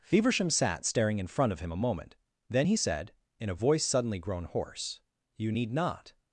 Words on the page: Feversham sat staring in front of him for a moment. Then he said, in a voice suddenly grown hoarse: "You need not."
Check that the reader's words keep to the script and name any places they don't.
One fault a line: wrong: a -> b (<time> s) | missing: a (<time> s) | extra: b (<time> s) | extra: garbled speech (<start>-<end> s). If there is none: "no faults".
missing: for (1.7 s)